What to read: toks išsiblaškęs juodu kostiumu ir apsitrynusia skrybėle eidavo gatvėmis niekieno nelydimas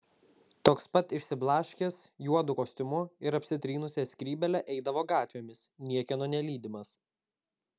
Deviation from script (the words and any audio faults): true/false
true